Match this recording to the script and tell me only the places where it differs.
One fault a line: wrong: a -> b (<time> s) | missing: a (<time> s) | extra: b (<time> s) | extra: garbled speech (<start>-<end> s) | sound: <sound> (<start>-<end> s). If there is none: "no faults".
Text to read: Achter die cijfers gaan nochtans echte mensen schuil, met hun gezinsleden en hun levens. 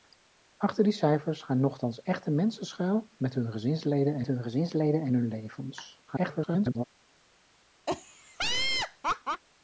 extra: gezinsleden en hun (4.4 s)
extra: garbled speech (6.1-6.8 s)
sound: laugh (7.9-9.4 s)